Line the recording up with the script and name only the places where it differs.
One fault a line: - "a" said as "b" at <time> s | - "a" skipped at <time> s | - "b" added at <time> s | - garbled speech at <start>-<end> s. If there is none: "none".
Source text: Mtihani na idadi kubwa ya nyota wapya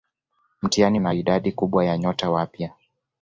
none